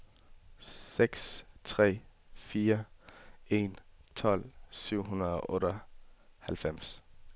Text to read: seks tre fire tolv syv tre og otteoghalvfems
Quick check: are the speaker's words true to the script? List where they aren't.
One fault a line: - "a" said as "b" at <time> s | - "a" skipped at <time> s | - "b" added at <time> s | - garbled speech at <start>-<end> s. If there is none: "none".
- "en" added at 3.5 s
- "tre" said as "hundrede" at 5.0 s